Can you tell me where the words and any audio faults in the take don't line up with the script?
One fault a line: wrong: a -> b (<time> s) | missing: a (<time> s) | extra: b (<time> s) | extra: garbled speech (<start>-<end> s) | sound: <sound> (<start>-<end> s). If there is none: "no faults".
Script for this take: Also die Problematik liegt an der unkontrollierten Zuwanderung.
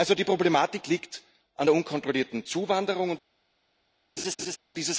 sound: laugh (4.2-4.6 s)